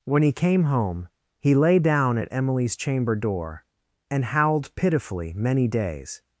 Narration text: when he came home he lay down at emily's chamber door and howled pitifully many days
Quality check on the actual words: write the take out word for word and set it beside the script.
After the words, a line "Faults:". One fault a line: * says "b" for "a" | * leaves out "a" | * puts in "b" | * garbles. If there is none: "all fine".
when he came home he lay down at emily's chamber door and howled pitifully many days
Faults:
all fine